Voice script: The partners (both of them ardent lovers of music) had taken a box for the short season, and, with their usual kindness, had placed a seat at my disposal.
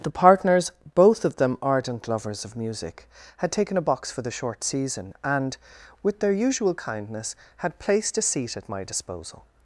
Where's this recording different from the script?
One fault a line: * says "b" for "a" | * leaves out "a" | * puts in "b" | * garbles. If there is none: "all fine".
all fine